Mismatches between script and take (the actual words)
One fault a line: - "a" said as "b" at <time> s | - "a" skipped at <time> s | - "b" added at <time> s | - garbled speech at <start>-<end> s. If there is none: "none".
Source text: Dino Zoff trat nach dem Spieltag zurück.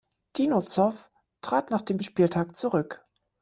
none